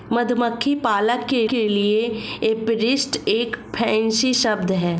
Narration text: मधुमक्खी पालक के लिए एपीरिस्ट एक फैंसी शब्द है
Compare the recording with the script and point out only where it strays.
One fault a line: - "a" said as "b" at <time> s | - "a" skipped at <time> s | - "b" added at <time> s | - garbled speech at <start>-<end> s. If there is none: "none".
- "के" added at 1.5 s